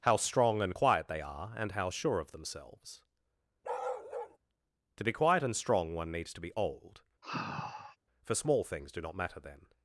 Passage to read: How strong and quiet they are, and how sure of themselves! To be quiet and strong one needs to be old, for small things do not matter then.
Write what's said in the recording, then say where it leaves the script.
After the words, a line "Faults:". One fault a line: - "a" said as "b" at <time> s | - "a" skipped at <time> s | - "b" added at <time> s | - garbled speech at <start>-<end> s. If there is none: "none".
How strong and quiet they are, and how sure of themselves! To be quiet and strong one needs to be old, for small things do not matter then.
Faults:
none